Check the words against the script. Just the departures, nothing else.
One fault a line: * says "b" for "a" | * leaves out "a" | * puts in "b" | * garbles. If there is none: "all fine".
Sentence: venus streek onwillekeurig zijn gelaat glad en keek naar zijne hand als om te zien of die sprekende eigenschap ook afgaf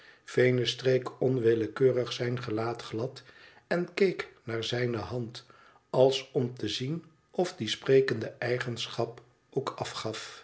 all fine